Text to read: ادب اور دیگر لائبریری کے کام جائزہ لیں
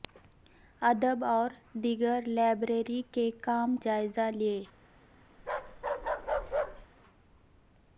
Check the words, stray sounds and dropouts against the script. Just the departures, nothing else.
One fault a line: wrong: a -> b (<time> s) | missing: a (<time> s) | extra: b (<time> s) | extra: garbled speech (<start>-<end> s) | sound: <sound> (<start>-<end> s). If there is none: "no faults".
sound: bark (5.4-6.9 s)